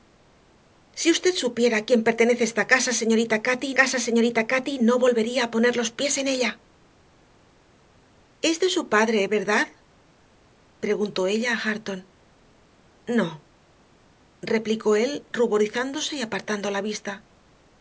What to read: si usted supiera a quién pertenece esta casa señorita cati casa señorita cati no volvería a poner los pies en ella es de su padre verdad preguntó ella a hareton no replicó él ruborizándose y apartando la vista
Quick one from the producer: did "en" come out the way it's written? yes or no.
yes